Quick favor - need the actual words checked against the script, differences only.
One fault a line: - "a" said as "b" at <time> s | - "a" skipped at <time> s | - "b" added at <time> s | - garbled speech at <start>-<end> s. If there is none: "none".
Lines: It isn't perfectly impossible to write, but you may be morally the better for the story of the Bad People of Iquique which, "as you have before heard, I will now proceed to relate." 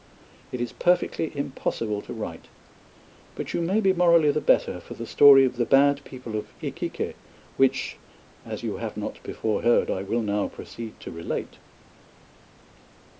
- "isn't" said as "is" at 0.6 s
- "not" added at 9.0 s